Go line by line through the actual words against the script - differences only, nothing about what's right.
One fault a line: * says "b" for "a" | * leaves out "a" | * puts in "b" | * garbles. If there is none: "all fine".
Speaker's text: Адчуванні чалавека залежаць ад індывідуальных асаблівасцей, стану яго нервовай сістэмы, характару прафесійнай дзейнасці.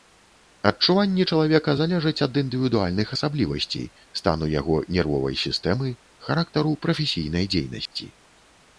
all fine